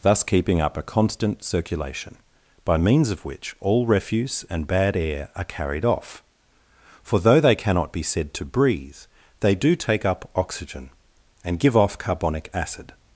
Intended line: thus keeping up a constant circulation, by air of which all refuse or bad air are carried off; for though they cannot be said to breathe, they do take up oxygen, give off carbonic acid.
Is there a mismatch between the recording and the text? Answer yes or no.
yes